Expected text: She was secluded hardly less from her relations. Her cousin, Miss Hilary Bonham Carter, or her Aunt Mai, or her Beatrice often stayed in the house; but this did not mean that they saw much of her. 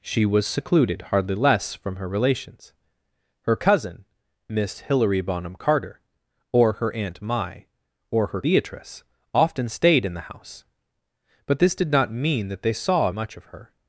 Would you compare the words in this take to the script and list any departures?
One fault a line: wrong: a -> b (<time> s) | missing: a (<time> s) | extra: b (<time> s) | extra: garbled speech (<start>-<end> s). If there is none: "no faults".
no faults